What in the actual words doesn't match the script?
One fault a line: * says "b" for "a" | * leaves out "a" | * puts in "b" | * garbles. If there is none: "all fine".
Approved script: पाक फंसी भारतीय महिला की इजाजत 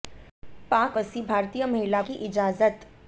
all fine